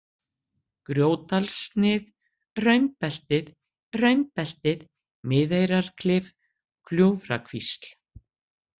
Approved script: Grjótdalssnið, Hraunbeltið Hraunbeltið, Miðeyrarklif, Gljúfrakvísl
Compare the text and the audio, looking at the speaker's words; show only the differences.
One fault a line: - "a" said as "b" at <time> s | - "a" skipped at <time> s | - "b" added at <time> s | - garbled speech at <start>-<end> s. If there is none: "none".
none